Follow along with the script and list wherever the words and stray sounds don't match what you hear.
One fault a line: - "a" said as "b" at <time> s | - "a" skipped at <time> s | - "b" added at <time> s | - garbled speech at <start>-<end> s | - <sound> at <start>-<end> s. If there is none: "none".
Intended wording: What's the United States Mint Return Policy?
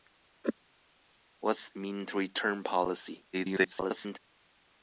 - "the United States" skipped at 1.7 s
- garbled speech at 3.3-4.2 s